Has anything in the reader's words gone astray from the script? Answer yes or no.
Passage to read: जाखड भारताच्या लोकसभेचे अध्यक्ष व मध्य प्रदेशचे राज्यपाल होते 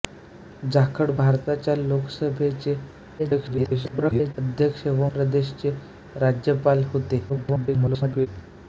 yes